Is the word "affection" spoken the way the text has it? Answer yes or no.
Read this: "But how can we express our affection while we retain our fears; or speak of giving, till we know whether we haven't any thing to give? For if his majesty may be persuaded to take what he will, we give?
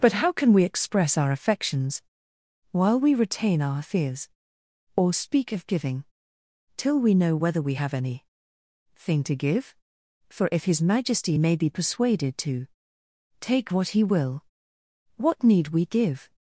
no